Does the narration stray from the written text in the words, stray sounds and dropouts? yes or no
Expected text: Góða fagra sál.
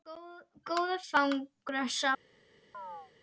yes